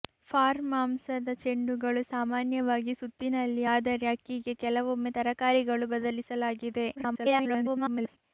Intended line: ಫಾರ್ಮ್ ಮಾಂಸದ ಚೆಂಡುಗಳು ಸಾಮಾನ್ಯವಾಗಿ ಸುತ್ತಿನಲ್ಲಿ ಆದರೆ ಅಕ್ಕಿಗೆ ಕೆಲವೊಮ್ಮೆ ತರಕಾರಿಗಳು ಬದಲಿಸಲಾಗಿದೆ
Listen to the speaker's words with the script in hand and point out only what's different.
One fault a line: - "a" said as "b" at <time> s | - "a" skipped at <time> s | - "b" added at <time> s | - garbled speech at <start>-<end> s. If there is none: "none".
- garbled speech at 7.0-8.2 s